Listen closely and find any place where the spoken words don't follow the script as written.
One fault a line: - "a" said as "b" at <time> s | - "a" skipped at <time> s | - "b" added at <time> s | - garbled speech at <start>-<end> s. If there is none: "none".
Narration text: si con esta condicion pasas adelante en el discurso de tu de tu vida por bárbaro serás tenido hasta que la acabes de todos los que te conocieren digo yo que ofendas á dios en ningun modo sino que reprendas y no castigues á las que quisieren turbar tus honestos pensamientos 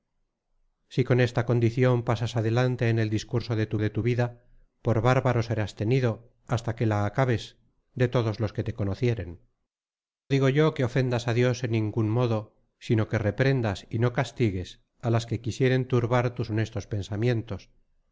none